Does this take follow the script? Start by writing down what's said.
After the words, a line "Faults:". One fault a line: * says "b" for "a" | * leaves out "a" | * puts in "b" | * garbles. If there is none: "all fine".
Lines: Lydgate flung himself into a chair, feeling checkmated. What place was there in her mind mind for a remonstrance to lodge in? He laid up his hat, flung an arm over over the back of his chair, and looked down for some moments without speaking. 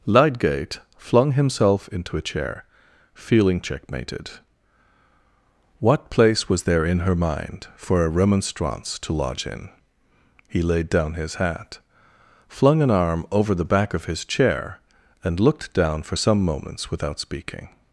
Lydgate flung himself into a chair, feeling checkmated. What place was there in her mind for a remonstrance to lodge in? He laid down his hat, flung an arm over the back of his chair, and looked down for some moments without speaking.
Faults:
* leaves out "mind"
* says "down" for "up"
* leaves out "over"